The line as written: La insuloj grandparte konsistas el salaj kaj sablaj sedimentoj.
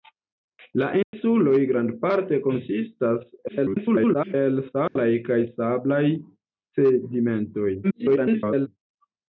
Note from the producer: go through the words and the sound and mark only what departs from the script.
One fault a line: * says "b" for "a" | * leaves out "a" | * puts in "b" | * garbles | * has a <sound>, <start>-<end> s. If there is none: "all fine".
* has a dropout, 1.0-1.1 s
* garbles
* has a dropout, 4.9-5.0 s
* garbles